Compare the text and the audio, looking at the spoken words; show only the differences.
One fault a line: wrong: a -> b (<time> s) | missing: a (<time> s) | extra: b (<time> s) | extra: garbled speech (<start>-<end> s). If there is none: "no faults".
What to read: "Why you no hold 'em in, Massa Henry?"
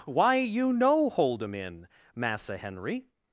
no faults